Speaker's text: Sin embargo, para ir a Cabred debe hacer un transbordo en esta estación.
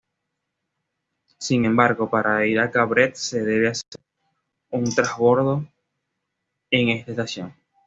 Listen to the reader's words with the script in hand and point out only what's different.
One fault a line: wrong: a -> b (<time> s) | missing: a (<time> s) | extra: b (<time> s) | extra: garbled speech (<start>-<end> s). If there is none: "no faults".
extra: se (3.1 s)